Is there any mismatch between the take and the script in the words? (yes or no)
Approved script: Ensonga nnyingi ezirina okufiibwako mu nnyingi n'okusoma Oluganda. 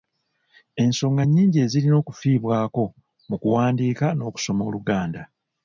yes